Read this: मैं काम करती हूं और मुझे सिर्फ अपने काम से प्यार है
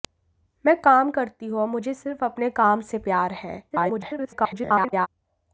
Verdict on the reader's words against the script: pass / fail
fail